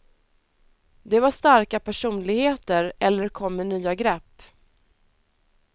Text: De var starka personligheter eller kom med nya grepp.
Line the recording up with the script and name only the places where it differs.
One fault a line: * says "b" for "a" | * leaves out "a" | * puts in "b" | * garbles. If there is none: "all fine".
all fine